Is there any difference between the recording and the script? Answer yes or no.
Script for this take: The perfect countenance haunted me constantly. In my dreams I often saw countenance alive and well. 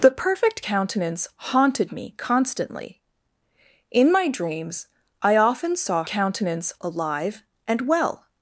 no